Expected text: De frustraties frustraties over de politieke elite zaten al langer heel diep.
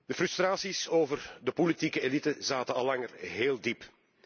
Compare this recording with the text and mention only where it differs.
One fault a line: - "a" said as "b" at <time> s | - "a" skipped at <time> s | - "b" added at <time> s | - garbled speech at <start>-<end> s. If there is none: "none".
- "frustraties" skipped at 0.9 s